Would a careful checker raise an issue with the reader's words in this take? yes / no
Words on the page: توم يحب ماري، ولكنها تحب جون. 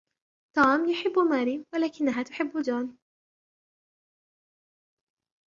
no